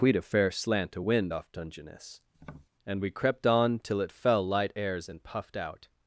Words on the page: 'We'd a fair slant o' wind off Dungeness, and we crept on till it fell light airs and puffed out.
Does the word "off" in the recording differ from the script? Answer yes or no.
no